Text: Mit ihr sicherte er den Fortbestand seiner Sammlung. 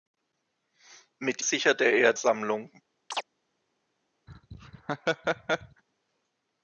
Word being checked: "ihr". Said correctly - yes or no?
no